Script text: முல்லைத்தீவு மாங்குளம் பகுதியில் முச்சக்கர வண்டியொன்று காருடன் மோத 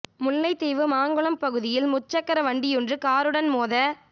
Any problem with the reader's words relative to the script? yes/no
no